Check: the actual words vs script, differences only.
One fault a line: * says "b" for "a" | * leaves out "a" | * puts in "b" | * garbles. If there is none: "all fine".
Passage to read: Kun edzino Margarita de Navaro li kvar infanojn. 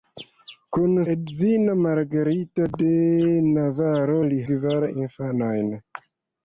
all fine